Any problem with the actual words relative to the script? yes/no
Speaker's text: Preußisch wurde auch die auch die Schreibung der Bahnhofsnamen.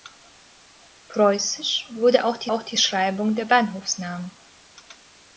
no